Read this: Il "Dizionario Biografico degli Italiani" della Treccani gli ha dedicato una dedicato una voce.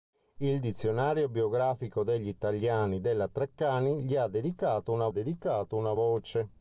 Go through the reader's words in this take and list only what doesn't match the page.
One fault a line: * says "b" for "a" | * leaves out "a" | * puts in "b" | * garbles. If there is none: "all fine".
all fine